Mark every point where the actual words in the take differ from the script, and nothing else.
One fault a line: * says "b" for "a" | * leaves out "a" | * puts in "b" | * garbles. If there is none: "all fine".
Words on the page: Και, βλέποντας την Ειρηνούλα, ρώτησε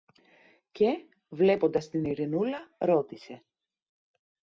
all fine